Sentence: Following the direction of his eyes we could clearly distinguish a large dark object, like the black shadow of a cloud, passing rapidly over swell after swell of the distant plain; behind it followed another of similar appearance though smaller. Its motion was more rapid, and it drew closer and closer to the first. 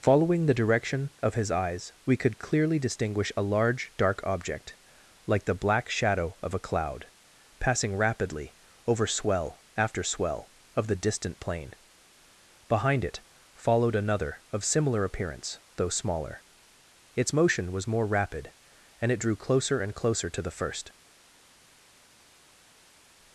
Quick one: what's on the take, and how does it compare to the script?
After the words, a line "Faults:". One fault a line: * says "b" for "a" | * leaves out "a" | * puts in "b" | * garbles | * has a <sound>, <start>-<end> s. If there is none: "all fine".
Following the direction of his eyes we could clearly distinguish a large dark object, like the black shadow of a cloud, passing rapidly over swell after swell of the distant plain; behind it followed another of similar appearance though smaller. Its motion was more rapid, and it drew closer and closer to the first.
Faults:
all fine